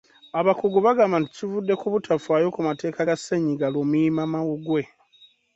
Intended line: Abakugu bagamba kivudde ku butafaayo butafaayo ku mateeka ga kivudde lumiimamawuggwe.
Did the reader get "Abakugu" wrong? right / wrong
right